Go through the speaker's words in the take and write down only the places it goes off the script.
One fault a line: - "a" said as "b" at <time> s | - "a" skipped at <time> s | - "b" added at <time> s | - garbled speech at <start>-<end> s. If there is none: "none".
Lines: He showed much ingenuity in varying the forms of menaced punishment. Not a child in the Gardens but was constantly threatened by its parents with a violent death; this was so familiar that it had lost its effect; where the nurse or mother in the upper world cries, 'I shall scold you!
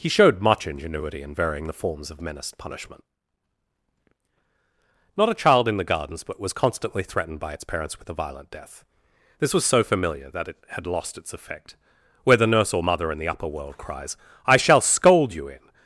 - "in" added at 15.5 s